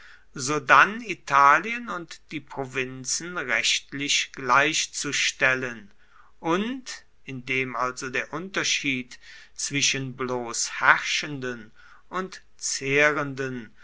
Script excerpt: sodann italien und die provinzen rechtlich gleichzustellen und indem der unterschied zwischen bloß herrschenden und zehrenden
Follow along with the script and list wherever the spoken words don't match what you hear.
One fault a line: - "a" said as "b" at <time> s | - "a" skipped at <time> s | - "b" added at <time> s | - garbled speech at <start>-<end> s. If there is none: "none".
- "also" added at 7.8 s